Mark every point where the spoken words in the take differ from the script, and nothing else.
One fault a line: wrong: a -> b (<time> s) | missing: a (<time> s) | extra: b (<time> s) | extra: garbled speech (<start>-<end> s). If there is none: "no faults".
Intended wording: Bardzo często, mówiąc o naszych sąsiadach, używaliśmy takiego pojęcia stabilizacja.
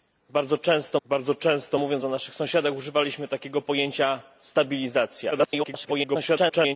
extra: bardzo często (1.0 s)
extra: garbled speech (5.3-6.8 s)